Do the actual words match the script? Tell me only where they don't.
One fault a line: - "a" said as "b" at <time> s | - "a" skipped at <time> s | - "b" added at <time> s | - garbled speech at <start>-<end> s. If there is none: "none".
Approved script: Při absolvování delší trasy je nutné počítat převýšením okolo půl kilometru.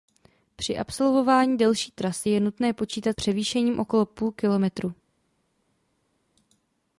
none